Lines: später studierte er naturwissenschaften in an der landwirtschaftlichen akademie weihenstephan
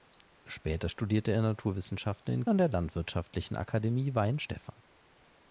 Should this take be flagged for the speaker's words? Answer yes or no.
no